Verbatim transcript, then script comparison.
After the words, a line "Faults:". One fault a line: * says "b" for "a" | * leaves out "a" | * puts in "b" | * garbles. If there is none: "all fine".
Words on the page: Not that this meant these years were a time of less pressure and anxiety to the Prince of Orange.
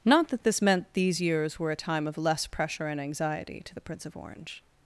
Not that this meant these years were a time of less pressure and anxiety to the Prince of Orange.
Faults:
all fine